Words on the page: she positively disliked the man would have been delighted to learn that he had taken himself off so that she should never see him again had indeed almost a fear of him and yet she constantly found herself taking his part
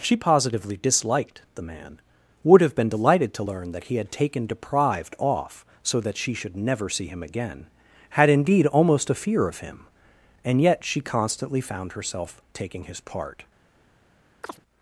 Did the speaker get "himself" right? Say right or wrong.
wrong